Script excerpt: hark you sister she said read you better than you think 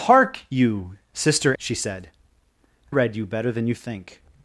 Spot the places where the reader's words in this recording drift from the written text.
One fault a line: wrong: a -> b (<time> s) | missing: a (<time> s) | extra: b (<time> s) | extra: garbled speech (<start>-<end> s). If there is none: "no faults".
no faults